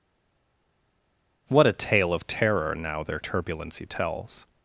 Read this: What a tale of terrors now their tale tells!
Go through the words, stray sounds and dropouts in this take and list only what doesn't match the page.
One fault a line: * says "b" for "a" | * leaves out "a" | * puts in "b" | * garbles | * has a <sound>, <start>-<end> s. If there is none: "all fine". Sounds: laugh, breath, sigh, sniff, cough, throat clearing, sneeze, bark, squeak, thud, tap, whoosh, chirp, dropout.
* says "terror" for "terrors"
* says "turbulency" for "tale"